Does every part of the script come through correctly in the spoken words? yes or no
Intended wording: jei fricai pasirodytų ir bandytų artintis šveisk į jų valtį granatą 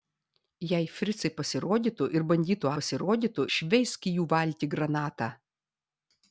no